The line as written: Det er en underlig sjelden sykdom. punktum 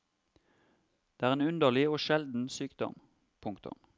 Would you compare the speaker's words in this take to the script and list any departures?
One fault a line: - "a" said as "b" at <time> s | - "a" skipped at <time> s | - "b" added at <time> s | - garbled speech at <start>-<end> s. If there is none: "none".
- "og" added at 1.9 s